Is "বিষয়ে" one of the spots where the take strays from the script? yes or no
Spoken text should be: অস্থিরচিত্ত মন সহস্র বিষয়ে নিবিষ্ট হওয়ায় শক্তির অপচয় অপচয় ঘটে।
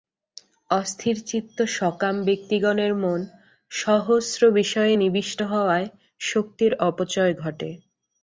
no